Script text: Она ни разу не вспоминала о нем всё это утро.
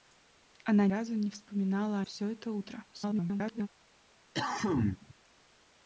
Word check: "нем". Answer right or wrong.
wrong